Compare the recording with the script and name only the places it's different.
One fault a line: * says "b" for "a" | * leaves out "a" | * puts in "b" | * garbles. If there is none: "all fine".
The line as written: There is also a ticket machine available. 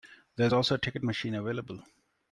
all fine